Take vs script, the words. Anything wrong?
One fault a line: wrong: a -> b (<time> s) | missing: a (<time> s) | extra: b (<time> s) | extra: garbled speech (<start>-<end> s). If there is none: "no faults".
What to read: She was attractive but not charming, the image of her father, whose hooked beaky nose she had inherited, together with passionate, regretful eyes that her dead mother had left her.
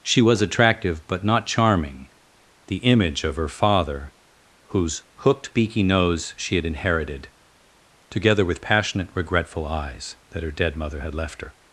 no faults